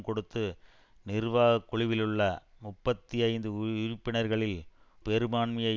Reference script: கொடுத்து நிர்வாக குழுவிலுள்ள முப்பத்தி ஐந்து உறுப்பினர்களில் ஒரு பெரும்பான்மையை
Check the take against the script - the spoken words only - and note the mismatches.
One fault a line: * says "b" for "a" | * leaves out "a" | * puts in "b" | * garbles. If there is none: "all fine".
* leaves out "ஒரு"